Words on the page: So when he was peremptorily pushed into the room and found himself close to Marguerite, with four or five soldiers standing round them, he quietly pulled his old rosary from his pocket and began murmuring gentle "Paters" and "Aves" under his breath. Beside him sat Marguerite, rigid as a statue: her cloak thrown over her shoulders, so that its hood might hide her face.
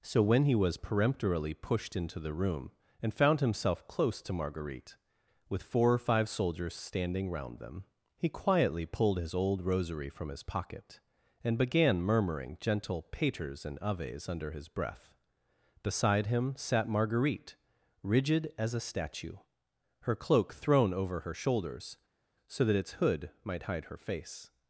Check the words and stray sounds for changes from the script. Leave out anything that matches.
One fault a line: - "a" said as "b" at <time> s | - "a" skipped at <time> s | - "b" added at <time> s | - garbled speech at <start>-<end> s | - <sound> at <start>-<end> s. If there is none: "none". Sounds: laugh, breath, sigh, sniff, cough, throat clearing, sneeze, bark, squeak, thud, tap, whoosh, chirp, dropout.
none